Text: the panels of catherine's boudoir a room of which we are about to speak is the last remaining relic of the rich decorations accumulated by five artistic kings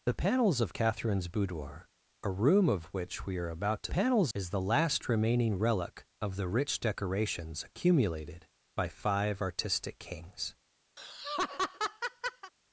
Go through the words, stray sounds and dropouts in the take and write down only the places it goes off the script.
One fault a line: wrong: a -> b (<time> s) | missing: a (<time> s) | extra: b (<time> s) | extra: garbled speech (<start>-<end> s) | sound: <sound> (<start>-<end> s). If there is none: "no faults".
wrong: speak -> panels (3.9 s)
sound: laugh (11.0-12.5 s)